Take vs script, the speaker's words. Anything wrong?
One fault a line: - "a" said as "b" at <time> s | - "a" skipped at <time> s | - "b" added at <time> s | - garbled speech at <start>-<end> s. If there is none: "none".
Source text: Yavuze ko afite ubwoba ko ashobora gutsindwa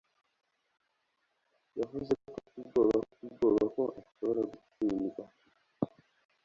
- "afite ubwoba" added at 3.0 s